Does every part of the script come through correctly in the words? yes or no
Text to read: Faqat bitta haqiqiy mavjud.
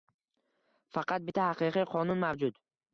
no